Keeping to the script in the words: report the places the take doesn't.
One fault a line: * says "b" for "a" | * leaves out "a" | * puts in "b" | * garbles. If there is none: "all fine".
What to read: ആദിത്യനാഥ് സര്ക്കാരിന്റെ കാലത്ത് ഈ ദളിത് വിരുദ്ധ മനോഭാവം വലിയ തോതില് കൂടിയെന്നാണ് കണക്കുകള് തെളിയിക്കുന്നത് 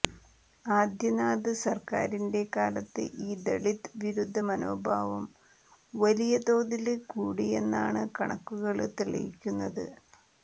all fine